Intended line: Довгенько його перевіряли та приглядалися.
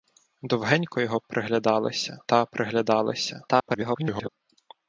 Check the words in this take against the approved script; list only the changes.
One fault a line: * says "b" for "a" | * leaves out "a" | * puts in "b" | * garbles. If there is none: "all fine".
* says "приглядалися" for "перевіряли"
* garbles